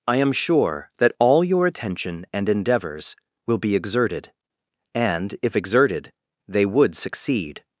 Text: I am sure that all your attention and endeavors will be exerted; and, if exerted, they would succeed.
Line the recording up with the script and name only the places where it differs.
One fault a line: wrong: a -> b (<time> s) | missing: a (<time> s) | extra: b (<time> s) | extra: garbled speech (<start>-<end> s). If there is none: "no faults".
no faults